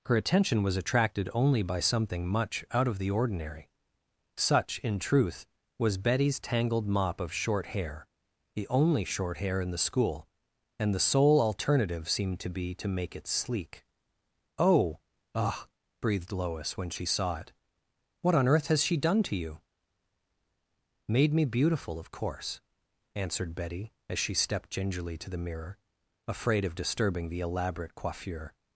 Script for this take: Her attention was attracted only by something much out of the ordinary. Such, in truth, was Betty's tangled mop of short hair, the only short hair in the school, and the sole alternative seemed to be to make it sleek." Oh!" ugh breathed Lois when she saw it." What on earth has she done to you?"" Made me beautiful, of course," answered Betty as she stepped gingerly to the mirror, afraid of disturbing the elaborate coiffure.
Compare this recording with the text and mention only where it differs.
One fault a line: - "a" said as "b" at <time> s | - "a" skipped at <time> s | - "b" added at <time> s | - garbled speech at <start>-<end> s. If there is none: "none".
none